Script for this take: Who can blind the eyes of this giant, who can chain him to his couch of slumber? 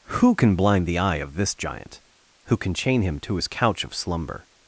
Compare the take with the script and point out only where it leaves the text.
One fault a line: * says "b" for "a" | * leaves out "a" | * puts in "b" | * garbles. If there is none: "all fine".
* says "eye" for "eyes"